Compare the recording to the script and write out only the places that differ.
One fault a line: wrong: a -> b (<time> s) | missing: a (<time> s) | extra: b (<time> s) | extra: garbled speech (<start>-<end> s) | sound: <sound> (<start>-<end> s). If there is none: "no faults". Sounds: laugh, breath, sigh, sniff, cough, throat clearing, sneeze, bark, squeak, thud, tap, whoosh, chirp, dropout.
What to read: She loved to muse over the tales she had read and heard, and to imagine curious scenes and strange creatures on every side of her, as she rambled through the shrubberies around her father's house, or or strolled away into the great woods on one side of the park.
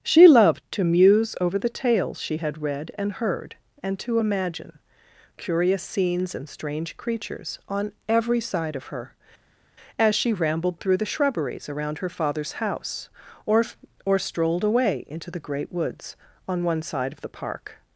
no faults